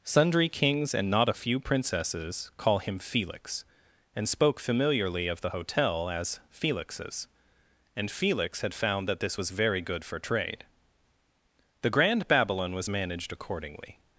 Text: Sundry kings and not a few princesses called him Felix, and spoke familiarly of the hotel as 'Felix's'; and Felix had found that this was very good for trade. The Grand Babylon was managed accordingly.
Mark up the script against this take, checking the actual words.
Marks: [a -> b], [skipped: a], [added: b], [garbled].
Sundry kings and not a few princesses [called -> call] him Felix, and spoke familiarly of the hotel as 'Felix's'; and Felix had found that this was very good for trade. The Grand Babylon was managed accordingly.